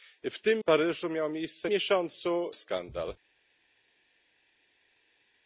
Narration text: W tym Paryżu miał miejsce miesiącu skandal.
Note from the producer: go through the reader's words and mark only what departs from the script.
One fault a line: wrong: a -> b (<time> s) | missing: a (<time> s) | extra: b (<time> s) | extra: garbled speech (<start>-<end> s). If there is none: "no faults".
no faults